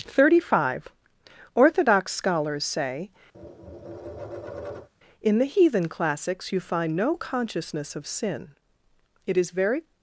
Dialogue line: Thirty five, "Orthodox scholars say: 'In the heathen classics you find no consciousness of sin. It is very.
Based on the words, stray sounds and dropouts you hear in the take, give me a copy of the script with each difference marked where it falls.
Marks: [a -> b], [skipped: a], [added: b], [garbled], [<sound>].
Thirty five, "Orthodox scholars say: [tap] 'In the heathen classics you find no consciousness of sin. It is very.